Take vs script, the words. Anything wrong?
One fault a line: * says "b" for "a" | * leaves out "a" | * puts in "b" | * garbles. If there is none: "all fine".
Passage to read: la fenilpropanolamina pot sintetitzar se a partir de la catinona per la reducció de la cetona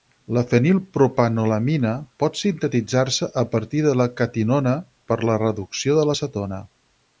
all fine